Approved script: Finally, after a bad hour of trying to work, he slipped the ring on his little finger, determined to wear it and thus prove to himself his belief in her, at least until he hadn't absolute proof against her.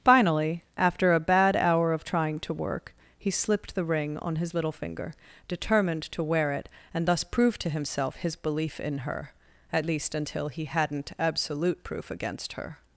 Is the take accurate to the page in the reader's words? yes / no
yes